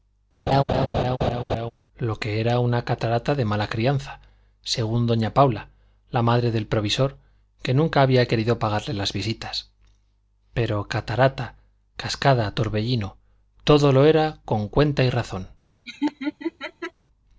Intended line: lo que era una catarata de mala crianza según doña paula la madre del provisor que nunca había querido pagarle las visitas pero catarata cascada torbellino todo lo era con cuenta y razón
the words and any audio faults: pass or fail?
fail